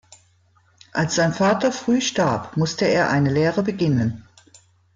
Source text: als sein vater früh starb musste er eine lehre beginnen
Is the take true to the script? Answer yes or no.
yes